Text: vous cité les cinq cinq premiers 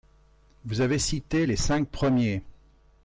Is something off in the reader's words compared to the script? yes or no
yes